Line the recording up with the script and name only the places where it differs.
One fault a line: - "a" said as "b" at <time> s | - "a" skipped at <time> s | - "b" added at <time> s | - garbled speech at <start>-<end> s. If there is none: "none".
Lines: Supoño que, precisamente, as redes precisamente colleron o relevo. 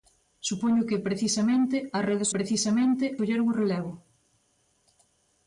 none